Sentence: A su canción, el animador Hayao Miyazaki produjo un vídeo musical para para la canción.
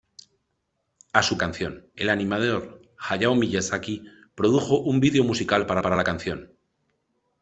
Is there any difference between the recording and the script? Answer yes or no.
no